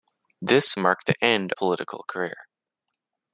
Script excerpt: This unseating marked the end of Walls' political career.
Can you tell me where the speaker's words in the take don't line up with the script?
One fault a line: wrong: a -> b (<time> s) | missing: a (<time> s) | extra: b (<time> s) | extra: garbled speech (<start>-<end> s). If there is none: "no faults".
missing: unseating (0.8 s)
missing: of Walls (1.5 s)